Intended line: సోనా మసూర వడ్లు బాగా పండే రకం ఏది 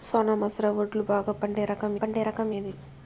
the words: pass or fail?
fail